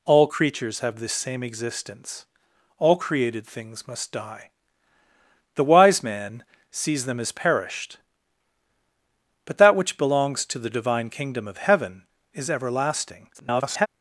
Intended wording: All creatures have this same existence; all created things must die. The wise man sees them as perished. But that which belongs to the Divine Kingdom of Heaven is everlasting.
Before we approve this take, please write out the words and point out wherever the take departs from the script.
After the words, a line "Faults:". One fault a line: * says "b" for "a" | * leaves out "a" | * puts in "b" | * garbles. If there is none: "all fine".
All creatures have this same existence; all created things must die. The wise man sees them as perished. But that which belongs to the Divine Kingdom of Heaven is everlasting. [garbled]
Faults:
* garbles